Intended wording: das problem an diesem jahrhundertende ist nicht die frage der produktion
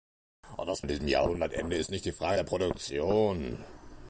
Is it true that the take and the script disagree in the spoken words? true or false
true